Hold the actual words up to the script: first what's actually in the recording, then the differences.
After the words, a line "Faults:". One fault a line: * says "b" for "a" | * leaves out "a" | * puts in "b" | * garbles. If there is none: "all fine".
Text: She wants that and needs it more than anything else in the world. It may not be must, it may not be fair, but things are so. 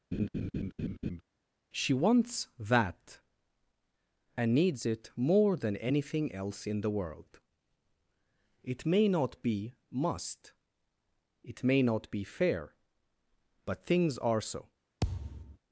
She wants that and needs it more than anything else in the world. It may not be must, it may not be fair, but things are so.
Faults:
all fine